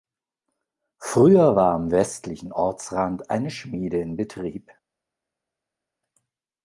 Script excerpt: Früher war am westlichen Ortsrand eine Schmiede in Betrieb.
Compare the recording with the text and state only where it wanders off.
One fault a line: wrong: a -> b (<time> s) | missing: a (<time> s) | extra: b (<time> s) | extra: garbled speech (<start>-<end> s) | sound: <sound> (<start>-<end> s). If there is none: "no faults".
no faults